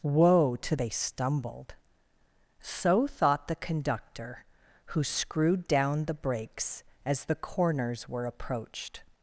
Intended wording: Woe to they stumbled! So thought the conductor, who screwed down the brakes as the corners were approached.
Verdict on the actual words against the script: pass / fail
pass